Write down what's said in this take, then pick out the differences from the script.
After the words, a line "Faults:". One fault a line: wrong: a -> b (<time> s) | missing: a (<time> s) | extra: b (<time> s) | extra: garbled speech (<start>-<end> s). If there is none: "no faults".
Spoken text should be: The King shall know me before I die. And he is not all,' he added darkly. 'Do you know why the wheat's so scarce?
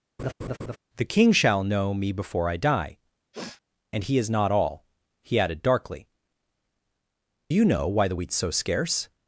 The King shall know me before I die. And he is not all,' he added darkly. 'You know why the wheat's so scarce?
Faults:
missing: Do (6.1 s)